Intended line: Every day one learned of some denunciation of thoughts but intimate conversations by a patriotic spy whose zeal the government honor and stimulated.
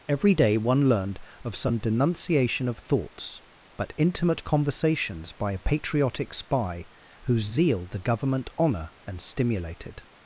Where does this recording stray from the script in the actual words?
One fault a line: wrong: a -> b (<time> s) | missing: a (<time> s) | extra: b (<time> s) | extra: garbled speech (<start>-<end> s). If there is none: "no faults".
no faults